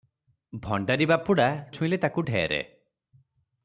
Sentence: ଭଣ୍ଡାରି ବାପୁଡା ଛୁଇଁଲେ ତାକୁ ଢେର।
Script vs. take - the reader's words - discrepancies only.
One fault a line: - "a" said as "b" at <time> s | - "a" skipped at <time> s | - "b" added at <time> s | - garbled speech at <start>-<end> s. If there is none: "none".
none